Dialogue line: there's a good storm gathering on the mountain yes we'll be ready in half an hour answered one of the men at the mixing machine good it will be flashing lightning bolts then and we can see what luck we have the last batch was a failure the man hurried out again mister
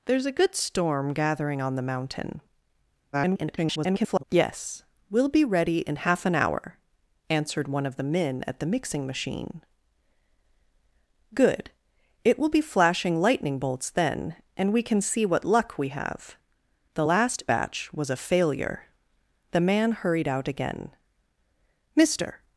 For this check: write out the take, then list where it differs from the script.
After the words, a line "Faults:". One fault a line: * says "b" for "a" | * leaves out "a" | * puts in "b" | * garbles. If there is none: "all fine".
there's a good storm gathering on the mountain [garbled] yes we'll be ready in half an hour answered one of the men at the mixing machine good it will be flashing lightning bolts then and we can see what luck we have the last batch was a failure the man hurried out again mister
Faults:
* garbles